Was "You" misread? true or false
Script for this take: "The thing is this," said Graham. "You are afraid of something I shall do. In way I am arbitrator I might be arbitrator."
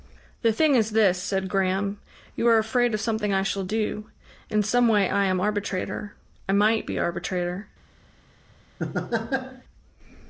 false